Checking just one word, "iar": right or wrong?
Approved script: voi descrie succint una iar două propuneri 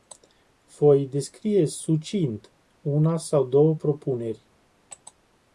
wrong